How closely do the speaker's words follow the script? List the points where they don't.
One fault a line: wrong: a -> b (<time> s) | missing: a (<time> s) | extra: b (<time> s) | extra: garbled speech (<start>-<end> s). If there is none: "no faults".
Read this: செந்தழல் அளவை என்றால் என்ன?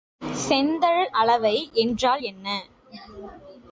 no faults